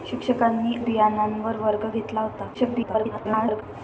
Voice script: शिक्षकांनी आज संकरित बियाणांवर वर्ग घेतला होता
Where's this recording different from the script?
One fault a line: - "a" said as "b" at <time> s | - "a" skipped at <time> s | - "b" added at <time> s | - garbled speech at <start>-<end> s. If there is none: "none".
- "आज संकरित" skipped at 0.8 s
- garbled speech at 2.5-3.6 s